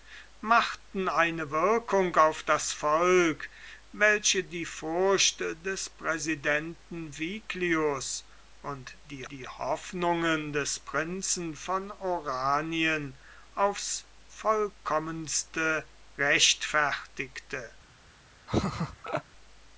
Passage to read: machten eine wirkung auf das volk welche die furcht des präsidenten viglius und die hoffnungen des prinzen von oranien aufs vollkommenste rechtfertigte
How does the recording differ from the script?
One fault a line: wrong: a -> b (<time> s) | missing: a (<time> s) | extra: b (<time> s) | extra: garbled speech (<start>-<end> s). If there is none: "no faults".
extra: die (9.3 s)